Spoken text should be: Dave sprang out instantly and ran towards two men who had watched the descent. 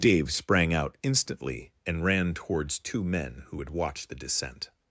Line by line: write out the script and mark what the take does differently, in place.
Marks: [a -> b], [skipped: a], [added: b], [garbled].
Dave sprang out instantly and ran towards two men who had watched the descent.